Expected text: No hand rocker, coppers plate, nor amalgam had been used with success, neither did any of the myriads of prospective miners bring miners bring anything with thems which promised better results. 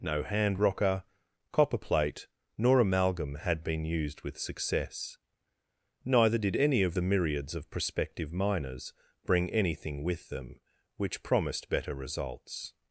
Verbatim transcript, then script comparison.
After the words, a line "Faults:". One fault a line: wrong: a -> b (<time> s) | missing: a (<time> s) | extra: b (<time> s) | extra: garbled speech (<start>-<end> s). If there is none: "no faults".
No hand rocker, copper plate, nor amalgam had been used with success, neither did any of the myriads of prospective miners bring anything with them which promised better results.
Faults:
wrong: coppers -> copper (1.5 s)
missing: miners bring (9.5 s)
wrong: thems -> them (10.3 s)